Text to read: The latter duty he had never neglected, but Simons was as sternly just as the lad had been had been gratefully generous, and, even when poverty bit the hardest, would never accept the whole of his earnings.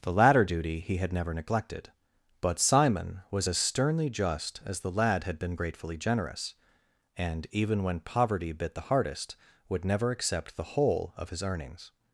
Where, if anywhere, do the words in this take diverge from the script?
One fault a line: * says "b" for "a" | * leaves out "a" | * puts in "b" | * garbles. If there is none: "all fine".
* says "Simon" for "Simons"
* leaves out "had been"